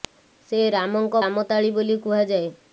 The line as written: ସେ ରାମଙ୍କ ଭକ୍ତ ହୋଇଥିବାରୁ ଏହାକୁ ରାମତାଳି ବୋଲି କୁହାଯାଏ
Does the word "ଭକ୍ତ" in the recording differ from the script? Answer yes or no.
yes